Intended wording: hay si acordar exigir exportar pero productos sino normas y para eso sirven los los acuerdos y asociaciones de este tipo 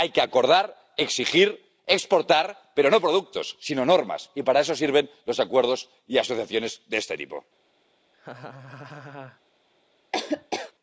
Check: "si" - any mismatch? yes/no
yes